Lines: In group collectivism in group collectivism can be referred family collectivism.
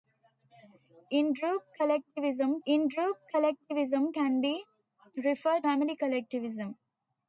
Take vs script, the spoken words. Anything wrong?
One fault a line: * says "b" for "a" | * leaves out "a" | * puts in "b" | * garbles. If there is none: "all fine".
all fine